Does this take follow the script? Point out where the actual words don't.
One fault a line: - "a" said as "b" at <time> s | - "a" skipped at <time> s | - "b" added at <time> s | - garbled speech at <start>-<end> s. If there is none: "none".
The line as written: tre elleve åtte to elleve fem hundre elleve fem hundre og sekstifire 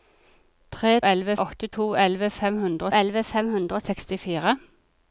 none